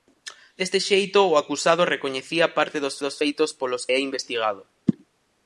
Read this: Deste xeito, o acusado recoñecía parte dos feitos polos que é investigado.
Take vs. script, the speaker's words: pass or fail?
fail